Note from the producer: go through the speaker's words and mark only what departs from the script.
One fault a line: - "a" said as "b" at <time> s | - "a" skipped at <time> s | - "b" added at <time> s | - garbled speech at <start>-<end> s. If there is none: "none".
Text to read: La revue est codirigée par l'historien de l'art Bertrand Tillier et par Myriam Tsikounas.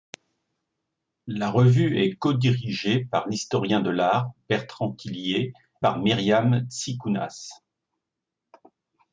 - "et" skipped at 5.5 s